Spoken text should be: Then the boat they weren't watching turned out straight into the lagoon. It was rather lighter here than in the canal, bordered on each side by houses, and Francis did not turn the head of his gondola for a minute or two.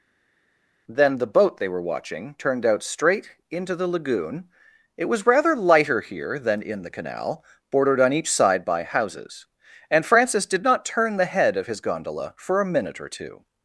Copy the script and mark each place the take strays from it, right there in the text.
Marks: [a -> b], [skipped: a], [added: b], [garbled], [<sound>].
Then the boat they [weren't -> were] watching turned out straight into the lagoon. It was rather lighter here than in the canal, bordered on each side by houses, and Francis did not turn the head of his gondola for a minute or two.